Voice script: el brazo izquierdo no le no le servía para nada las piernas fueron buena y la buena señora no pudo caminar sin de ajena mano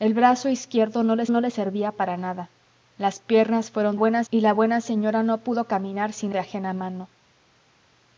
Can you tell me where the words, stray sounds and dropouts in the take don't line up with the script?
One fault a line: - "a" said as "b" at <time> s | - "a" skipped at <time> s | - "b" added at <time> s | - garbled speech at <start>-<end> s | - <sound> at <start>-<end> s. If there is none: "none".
none